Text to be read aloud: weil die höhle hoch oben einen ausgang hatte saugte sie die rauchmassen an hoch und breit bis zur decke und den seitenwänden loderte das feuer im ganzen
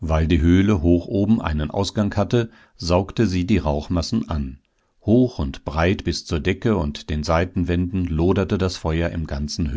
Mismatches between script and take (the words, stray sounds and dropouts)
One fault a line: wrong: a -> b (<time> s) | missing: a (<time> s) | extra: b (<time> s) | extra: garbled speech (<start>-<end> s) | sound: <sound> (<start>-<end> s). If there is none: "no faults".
no faults